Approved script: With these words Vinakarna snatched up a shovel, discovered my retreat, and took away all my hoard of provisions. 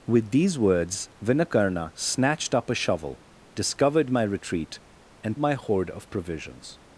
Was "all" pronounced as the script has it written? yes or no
no